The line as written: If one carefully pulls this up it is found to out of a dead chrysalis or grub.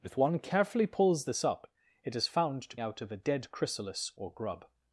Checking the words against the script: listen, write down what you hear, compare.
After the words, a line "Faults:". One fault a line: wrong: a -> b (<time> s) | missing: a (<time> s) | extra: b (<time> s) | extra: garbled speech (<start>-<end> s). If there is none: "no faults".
If one carefully pulls this up it is found to out of a dead chrysalis or grub.
Faults:
no faults